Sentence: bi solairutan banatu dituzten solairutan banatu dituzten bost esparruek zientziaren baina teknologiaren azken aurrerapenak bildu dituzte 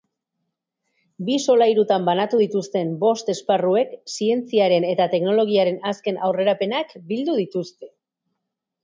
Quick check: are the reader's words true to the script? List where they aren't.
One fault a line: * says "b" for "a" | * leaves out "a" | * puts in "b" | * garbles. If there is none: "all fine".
* leaves out "solairutan banatu dituzten"
* says "eta" for "baina"